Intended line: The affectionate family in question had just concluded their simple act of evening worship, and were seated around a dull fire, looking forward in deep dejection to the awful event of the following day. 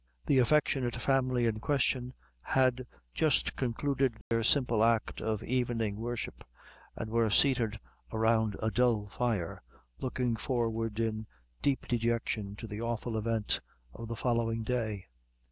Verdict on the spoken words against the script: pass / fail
pass